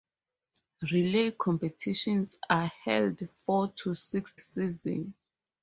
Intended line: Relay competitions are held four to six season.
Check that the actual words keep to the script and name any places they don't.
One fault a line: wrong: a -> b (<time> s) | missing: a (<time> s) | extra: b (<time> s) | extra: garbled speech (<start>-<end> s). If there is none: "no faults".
no faults